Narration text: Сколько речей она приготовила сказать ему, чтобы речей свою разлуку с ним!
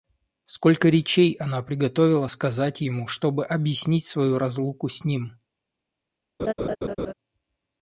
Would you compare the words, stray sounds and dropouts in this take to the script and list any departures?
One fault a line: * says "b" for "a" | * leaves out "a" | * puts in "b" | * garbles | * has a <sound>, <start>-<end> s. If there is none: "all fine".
* says "объяснить" for "речей"
* has a laugh, 6.4-7.1 s